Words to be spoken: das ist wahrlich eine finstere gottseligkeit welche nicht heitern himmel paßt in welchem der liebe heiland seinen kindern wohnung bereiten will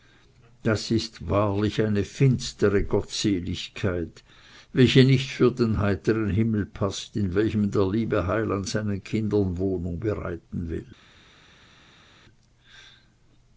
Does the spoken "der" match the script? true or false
true